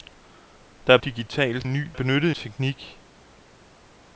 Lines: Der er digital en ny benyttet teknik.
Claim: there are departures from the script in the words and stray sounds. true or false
false